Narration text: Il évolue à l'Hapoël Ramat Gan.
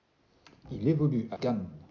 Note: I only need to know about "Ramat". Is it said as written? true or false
false